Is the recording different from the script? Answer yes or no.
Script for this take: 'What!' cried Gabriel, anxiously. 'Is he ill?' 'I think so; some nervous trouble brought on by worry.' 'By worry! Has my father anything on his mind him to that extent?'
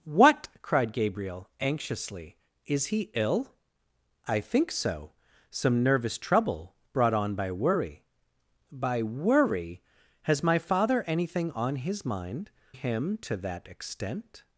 no